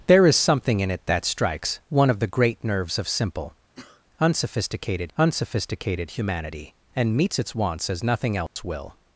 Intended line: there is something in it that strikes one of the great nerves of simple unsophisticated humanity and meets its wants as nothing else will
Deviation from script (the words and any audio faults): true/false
true